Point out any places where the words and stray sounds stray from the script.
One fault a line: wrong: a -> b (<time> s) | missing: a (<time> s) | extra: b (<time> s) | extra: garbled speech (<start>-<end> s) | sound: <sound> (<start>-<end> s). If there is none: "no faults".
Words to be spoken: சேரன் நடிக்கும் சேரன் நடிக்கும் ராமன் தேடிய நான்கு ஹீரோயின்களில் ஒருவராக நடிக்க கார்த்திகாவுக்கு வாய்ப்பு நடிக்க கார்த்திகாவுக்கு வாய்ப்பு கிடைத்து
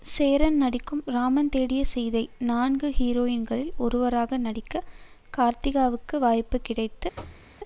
missing: சேரன் நடிக்கும் (1.0 s)
extra: சீதை (1.8 s)
missing: நடிக்க கார்த்திகாவுக்கு வாய்ப்பு (6.6 s)
sound: thud (7.2-7.5 s)